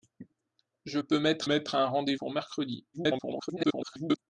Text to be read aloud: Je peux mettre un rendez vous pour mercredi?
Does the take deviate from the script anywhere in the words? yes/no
yes